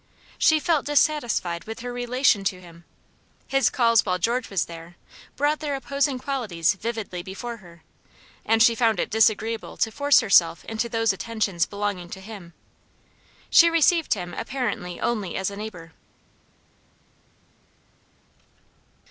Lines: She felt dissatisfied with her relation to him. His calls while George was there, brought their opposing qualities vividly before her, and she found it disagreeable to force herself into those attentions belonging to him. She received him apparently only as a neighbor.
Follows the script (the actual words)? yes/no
yes